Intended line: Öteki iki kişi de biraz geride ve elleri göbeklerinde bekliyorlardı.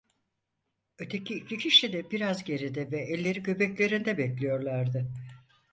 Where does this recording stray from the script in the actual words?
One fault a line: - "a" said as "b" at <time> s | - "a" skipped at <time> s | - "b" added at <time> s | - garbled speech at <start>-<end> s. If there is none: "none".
none